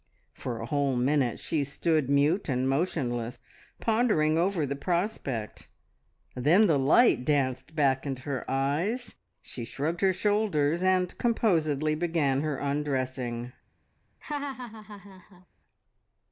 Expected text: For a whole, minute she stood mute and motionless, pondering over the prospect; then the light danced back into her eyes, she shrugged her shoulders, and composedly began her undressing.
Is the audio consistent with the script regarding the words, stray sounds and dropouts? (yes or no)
no